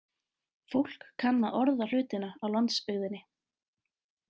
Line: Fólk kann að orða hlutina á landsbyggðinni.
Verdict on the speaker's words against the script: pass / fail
pass